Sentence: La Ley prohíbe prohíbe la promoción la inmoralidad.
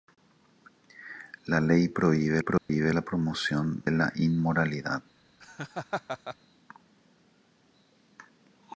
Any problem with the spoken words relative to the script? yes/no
no